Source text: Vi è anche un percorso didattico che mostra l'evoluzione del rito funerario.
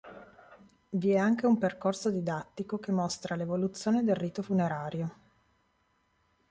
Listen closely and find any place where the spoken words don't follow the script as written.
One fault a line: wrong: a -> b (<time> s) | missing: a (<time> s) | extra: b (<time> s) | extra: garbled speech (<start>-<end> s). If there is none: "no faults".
no faults